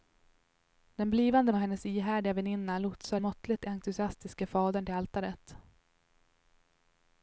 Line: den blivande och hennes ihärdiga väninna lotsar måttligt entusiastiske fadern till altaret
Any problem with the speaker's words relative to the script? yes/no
no